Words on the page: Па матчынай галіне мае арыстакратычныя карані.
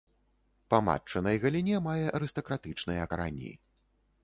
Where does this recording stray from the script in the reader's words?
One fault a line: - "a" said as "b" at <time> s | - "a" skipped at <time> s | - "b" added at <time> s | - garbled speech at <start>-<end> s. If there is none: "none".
none